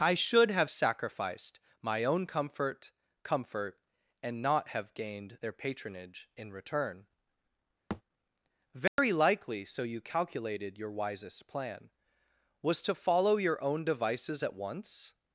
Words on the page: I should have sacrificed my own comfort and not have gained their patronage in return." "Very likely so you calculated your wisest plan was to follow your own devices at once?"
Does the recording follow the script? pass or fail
fail